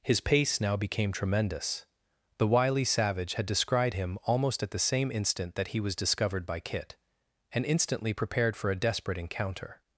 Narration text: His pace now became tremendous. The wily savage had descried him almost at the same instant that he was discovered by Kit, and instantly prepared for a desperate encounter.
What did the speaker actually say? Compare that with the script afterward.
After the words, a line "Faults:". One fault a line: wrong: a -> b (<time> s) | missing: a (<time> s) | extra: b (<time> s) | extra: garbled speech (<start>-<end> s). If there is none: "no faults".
His pace now became tremendous. The wily savage had descried him almost at the same instant that he was discovered by Kit, and instantly prepared for a desperate encounter.
Faults:
no faults